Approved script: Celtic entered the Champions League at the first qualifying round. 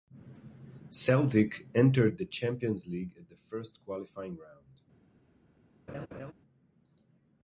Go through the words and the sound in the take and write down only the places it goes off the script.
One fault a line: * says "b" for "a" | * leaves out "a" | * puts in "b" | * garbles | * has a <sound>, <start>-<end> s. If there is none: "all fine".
* has a laugh, 5.9-6.3 s